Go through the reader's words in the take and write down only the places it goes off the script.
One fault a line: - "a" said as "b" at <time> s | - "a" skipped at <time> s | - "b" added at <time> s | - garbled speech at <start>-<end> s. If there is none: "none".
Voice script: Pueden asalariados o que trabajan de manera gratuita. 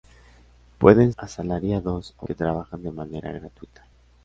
none